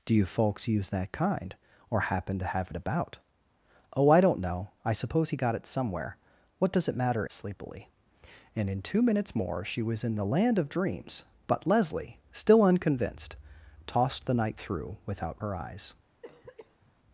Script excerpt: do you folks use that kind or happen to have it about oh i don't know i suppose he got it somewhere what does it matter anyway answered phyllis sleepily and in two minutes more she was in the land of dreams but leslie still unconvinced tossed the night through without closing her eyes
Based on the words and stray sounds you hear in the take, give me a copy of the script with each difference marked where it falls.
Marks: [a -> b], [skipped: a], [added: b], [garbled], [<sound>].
do you folks use that kind or happen to have it about oh i don't know i suppose he got it somewhere what does it matter [skipped: anyway answered phyllis] sleepily and in two minutes more she was in the land of dreams but leslie still unconvinced tossed the night through without [skipped: closing] her eyes [cough]